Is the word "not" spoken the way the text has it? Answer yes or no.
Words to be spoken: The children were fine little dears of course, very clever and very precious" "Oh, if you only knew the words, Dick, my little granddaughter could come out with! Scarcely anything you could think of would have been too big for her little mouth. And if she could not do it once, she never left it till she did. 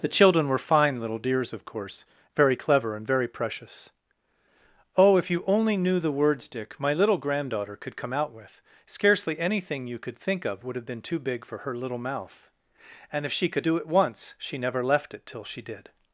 no